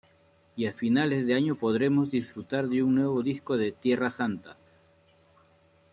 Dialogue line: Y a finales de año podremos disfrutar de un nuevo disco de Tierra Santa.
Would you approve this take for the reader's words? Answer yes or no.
yes